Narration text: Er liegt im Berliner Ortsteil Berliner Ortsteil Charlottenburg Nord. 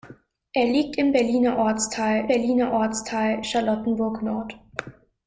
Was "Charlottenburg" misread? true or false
false